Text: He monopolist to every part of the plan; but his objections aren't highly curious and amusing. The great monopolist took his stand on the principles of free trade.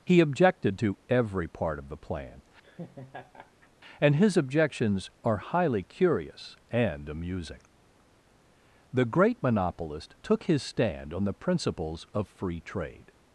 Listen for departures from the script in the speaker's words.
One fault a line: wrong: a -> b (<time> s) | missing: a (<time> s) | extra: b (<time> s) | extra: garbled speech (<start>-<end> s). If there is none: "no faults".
wrong: monopolist -> objected (0.2 s)
wrong: but -> and (4.0 s)
wrong: aren't -> are (5.2 s)